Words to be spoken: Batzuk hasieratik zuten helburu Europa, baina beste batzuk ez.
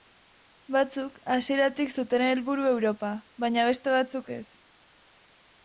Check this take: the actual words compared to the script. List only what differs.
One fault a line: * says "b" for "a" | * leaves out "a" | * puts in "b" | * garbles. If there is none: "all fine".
all fine